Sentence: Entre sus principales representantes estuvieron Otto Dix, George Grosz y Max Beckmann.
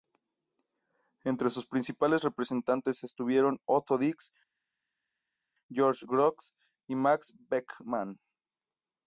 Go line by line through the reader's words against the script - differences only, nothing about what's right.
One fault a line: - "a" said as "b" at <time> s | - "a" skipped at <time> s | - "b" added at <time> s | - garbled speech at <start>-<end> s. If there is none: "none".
none